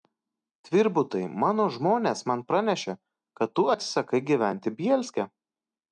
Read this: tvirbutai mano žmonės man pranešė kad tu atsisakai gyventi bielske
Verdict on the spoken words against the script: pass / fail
pass